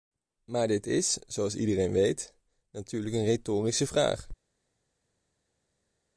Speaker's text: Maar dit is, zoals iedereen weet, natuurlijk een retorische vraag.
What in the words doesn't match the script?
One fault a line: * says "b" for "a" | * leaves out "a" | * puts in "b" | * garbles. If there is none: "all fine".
all fine